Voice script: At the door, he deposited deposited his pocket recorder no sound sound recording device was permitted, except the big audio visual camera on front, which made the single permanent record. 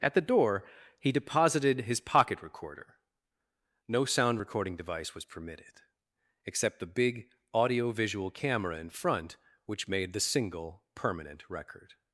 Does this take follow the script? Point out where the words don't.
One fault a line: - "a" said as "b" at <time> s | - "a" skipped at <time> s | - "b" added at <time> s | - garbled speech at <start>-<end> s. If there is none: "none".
- "deposited" skipped at 1.8 s
- "sound" skipped at 4.4 s
- "on" said as "in" at 8.8 s